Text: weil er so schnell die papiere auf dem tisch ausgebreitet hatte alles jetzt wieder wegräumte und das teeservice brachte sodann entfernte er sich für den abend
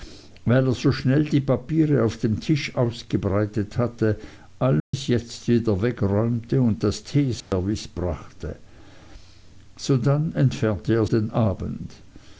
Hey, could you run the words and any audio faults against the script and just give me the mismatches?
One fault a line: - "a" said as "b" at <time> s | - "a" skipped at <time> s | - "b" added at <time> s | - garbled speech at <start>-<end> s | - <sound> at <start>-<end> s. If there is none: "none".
- dropout at 4.8-4.9 s
- dropout at 7.4-7.5 s
- "sich für" skipped at 11.1 s